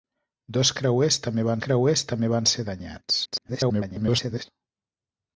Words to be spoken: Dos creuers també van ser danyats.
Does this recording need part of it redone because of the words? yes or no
yes